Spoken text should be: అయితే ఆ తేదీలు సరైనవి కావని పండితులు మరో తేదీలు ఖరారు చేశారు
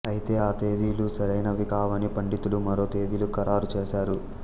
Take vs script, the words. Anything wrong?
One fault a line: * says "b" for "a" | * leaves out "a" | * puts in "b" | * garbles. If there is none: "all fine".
all fine